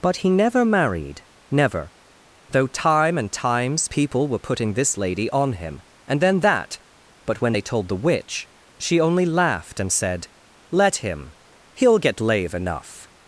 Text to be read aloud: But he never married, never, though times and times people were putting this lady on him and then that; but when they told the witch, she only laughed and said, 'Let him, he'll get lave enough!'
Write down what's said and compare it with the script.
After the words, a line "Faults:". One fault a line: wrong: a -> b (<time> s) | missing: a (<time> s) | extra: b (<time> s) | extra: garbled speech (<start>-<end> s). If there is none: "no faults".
But he never married, never, though time and times people were putting this lady on him and then that; but when they told the witch, she only laughed and said, 'Let him, he'll get lave enough!'
Faults:
wrong: times -> time (2.7 s)